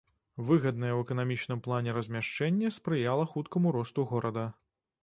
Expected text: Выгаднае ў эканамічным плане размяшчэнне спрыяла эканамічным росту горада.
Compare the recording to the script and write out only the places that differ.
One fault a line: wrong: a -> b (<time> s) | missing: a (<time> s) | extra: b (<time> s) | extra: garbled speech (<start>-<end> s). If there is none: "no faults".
wrong: эканамічным -> хуткаму (3.4 s)